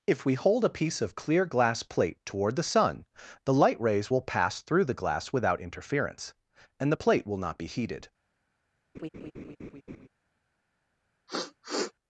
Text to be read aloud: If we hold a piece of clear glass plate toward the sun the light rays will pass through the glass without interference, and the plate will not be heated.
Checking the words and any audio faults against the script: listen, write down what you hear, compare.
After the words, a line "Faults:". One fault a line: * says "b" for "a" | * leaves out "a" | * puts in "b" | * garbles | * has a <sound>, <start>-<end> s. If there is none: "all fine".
If we hold a piece of clear glass plate toward the sun the light rays will pass through the glass without interference, and the plate will not be heated.
Faults:
* has a laugh, 8.9-10.1 s
* has a sniff, 11.3-11.9 s